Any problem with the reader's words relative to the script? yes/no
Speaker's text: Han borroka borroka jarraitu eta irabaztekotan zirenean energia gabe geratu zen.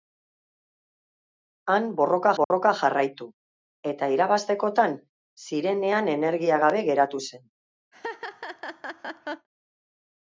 no